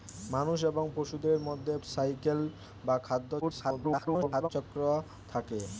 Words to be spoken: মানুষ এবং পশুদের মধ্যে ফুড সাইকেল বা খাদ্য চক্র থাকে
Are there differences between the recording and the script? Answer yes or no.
yes